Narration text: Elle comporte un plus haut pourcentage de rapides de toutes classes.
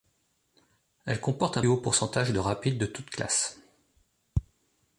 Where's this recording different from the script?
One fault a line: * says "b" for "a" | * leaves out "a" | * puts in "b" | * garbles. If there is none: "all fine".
* leaves out "plus"